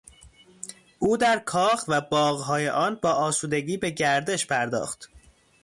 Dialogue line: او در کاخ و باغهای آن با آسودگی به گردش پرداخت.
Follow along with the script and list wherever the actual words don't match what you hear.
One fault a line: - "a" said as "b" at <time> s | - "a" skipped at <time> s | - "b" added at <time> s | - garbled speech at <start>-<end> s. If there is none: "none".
none